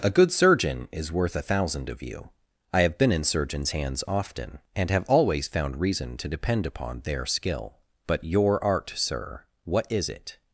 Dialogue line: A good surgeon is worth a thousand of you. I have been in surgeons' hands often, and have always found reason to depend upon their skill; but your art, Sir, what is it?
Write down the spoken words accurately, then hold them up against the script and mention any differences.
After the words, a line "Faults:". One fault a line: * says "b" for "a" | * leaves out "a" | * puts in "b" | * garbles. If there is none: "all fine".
A good surgeon is worth a thousand of you. I have been in surgeons' hands often, and have always found reason to depend upon their skill; but your art, Sir, what is it?
Faults:
all fine